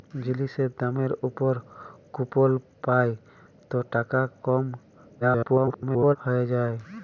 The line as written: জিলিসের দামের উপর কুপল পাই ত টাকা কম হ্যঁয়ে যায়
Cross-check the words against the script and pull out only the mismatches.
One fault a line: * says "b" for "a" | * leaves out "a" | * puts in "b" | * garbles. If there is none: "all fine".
* garbles